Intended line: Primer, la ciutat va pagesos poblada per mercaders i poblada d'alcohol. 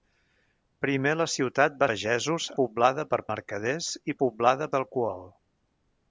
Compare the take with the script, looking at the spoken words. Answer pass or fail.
pass